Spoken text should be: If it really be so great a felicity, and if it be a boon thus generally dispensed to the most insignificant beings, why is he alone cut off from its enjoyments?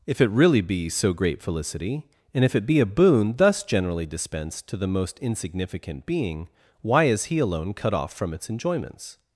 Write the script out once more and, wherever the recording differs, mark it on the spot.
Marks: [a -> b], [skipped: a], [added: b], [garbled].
If it really be so great [skipped: a] felicity, and if it be a boon thus generally dispensed to the most insignificant [beings, -> being] why is he alone cut off from its enjoyments?